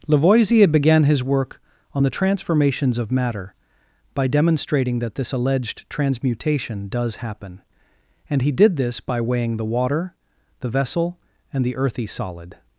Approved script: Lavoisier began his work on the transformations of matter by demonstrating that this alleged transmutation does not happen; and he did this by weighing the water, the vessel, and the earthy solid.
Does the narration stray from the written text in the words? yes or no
yes